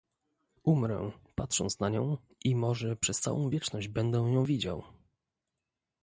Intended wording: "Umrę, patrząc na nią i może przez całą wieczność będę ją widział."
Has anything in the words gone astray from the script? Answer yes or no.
no